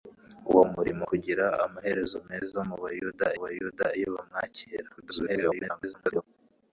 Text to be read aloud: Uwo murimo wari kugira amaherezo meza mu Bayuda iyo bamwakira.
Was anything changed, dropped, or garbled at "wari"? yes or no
yes